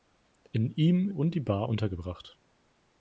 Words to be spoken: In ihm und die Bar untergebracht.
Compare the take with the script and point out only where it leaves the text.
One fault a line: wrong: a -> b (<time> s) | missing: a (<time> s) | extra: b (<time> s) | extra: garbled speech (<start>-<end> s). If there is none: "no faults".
no faults